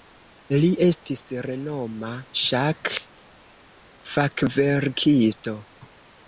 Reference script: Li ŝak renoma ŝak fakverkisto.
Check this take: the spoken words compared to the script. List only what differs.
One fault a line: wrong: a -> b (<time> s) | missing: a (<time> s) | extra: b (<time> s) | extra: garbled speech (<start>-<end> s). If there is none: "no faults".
wrong: ŝak -> estis (0.8 s)